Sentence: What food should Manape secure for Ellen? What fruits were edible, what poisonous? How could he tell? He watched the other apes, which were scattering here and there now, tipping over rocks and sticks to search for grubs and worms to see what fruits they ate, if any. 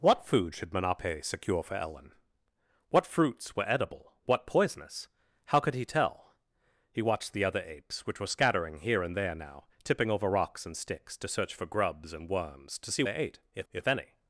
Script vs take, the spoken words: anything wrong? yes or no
yes